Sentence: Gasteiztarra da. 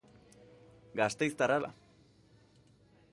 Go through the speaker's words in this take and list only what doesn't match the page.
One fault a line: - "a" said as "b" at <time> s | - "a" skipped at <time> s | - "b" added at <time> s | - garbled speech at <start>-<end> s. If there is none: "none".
none